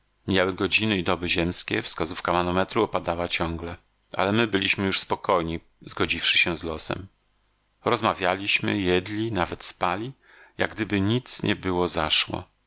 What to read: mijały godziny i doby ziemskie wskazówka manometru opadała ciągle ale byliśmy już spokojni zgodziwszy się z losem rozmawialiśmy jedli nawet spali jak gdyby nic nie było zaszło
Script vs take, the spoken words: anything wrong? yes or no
yes